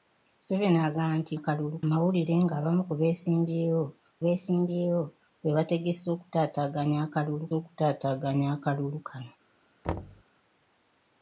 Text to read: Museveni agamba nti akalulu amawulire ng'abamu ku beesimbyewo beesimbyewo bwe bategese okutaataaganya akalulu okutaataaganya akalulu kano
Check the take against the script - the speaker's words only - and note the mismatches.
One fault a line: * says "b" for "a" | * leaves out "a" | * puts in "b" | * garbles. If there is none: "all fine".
all fine